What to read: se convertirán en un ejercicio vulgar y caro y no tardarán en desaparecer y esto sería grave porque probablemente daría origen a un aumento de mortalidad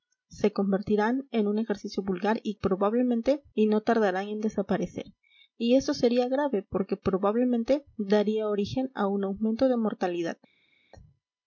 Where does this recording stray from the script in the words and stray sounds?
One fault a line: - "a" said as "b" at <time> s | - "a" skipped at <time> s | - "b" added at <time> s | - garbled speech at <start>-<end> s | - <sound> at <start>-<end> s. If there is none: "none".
- "caro" said as "probablemente" at 2.5 s